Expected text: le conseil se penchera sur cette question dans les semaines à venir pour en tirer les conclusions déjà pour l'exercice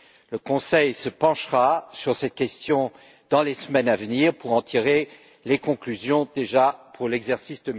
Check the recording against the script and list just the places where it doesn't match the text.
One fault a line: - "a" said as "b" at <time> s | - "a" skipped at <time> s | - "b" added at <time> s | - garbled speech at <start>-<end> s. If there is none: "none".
none